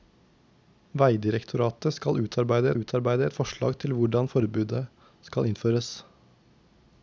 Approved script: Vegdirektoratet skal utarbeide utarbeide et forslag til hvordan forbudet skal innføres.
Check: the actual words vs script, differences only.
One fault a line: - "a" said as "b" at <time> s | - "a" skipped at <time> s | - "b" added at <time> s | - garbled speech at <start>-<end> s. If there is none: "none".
none